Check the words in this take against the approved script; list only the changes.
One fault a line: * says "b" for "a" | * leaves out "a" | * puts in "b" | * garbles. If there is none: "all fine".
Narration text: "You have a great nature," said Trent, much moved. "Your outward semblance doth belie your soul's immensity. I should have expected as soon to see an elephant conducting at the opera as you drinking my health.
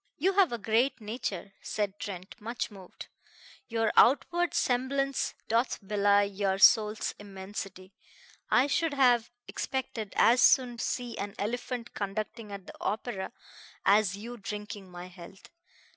* leaves out "to"